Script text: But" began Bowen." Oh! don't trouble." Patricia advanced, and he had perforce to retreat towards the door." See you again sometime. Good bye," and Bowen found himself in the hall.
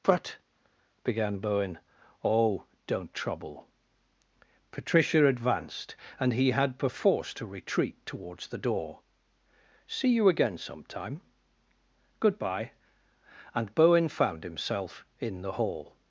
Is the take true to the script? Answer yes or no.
yes